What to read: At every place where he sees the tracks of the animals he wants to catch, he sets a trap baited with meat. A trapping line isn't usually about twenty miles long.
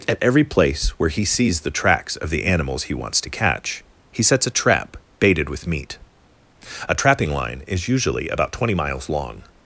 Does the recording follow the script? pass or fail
fail